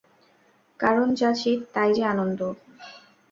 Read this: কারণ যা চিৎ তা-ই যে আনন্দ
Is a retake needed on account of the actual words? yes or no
no